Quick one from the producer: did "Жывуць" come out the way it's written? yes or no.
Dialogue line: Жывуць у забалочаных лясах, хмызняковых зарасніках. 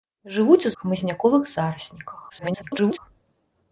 yes